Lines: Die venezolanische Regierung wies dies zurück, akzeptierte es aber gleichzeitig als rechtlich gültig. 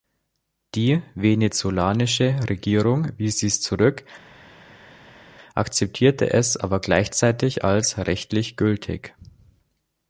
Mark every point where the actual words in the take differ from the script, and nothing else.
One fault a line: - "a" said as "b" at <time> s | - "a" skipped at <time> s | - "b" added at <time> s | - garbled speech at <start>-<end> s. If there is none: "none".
none